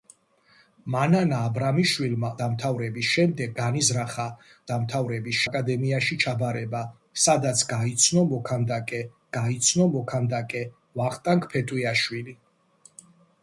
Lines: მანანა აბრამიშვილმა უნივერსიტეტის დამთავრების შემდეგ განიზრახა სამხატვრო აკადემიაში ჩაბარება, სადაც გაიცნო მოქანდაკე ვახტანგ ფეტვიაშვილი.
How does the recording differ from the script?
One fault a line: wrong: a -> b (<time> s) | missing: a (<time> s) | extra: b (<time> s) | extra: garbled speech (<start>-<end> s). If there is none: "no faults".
missing: უნივერსიტეტის (2.3 s)
wrong: სამხატვრო -> დამთავრების (4.7 s)
extra: გაიცნო მოქანდაკე (9.4 s)